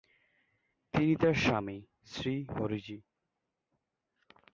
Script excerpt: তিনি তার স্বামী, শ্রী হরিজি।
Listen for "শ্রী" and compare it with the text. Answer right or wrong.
right